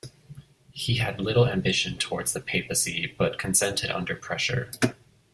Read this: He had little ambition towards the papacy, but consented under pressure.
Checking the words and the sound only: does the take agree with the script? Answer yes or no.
yes